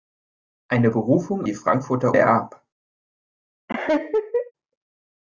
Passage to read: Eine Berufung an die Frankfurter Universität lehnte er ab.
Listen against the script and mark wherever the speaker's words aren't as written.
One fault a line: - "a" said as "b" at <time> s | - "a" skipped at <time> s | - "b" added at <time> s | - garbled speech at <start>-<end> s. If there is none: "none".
- "an" skipped at 1.5 s
- "Universität lehnte" skipped at 2.2 s